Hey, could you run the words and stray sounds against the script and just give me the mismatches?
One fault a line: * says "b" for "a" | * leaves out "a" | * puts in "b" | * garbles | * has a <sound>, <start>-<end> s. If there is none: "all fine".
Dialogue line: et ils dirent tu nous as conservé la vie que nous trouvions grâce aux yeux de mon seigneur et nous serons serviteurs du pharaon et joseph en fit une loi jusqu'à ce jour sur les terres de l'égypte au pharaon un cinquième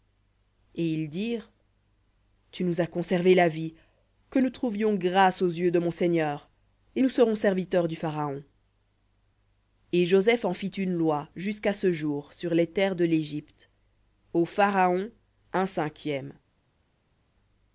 all fine